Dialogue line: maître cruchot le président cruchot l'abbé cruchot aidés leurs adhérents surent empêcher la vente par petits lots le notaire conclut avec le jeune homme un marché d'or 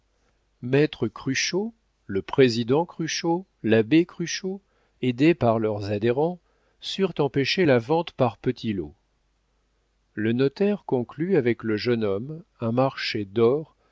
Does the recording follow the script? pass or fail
fail